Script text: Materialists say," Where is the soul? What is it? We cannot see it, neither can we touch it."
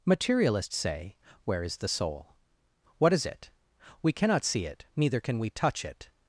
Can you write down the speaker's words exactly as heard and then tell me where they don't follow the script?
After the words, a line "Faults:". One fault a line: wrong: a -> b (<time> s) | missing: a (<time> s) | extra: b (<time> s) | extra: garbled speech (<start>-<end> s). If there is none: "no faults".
Materialists say," Where is the soul? What is it? We cannot see it, neither can we touch it."
Faults:
no faults